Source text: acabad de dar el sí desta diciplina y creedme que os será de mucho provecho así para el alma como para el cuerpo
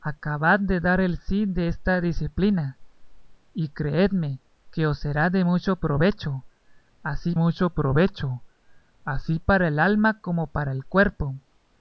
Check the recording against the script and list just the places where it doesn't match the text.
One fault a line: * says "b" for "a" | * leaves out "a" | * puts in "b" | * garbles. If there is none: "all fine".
* puts in "mucho provecho así"